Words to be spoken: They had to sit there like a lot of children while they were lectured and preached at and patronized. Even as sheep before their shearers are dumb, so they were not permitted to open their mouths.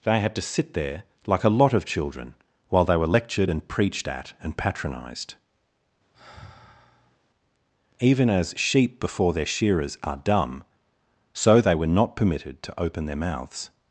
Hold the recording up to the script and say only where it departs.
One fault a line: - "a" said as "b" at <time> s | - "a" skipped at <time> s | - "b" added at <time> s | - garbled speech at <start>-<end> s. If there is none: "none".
none